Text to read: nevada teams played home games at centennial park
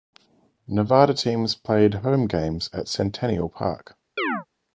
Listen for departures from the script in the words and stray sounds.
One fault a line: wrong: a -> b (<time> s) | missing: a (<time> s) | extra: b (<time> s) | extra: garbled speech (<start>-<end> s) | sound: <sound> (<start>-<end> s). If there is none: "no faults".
sound: chirp (4.2-4.5 s)